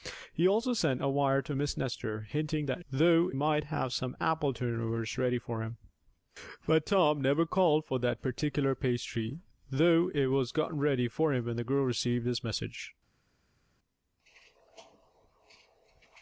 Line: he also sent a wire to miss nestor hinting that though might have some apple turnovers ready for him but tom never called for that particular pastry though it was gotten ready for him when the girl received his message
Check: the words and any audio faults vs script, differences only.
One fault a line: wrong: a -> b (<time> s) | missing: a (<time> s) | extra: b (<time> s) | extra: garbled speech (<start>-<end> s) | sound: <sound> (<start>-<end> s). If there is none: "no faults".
no faults